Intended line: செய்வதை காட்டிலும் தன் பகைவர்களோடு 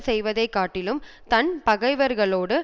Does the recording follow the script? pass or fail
pass